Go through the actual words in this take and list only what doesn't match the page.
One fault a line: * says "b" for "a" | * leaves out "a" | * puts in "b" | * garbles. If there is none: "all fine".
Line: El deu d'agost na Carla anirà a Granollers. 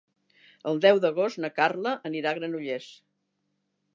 all fine